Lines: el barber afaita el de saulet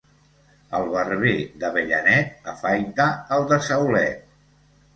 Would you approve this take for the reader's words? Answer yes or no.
no